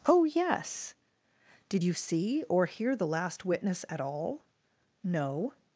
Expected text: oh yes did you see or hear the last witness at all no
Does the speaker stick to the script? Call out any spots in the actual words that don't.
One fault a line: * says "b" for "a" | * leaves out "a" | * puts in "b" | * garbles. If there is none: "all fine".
all fine